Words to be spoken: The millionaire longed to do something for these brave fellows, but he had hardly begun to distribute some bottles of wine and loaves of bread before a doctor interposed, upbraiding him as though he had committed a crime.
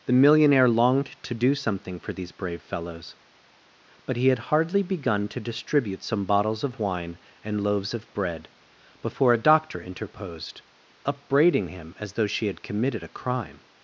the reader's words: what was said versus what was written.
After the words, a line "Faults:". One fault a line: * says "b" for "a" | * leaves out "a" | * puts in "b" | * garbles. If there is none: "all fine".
The millionaire longed to do something for these brave fellows, but he had hardly begun to distribute some bottles of wine and loaves of bread before a doctor interposed, upbraiding him as though she had committed a crime.
Faults:
* says "she" for "he"